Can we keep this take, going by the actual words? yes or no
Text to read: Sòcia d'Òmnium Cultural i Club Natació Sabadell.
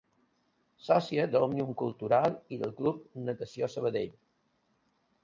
no